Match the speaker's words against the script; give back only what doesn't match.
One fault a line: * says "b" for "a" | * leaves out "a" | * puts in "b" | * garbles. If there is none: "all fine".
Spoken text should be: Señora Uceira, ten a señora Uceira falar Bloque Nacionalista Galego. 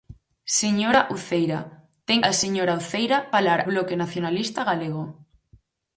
all fine